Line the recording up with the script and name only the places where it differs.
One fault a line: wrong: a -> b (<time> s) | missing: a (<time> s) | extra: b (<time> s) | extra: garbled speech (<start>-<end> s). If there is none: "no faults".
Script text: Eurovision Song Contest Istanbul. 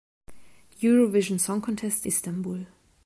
no faults